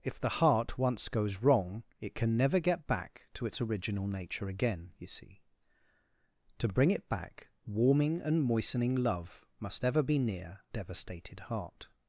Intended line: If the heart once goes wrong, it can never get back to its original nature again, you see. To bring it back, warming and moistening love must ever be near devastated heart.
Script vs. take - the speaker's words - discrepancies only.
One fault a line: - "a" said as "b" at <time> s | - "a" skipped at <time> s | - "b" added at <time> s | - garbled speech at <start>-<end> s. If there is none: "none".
none